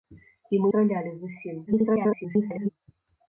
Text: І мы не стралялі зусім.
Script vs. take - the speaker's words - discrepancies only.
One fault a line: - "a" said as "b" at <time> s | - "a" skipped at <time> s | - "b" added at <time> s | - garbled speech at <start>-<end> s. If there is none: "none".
- "не" skipped at 0.7 s
- garbled speech at 1.7-2.7 s